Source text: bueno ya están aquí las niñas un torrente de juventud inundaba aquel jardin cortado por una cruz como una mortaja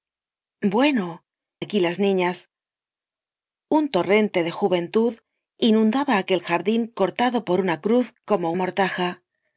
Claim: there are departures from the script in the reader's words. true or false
true